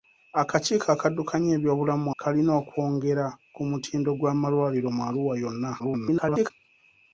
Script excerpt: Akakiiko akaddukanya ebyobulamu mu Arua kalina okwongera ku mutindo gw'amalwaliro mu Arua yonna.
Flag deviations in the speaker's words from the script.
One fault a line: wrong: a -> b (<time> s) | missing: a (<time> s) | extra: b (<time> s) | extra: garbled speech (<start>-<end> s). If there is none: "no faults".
missing: Arua (2.1 s)
extra: garbled speech (5.8-6.5 s)